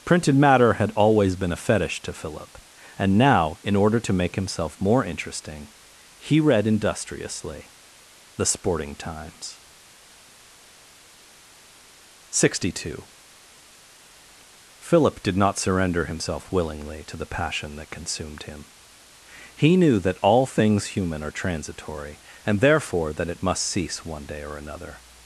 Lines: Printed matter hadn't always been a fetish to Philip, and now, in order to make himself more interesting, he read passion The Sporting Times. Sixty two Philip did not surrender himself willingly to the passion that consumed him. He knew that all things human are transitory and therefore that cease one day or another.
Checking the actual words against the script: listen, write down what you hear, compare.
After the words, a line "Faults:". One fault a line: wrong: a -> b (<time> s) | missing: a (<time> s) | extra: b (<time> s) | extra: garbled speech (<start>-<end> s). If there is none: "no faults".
Printed matter had always been a fetish to Philip, and now, in order to make himself more interesting, he read industriously The Sporting Times. Sixty two Philip did not surrender himself willingly to the passion that consumed him. He knew that all things human are transitory and therefore that it must cease one day or another.
Faults:
wrong: hadn't -> had (0.7 s)
wrong: passion -> industriously (6.7 s)
extra: it must (23.3 s)